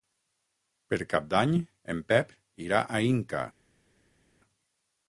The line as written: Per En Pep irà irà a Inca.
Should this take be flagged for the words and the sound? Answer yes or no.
yes